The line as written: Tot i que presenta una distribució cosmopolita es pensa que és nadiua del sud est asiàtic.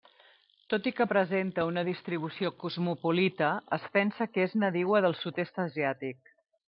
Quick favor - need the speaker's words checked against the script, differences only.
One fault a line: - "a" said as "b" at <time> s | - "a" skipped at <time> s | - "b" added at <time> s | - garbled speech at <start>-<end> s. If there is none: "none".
none